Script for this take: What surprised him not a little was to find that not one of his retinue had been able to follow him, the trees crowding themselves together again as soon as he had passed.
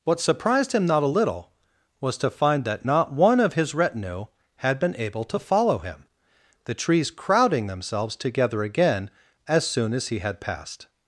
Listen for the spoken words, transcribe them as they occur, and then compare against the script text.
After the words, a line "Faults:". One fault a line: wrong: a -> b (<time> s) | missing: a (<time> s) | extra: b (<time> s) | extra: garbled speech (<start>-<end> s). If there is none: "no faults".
What surprised him not a little was to find that not one of his retinue had been able to follow him, the trees crowding themselves together again as soon as he had passed.
Faults:
no faults